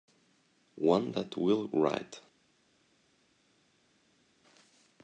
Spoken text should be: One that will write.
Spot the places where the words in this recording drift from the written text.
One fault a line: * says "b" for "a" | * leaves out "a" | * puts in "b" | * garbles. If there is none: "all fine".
all fine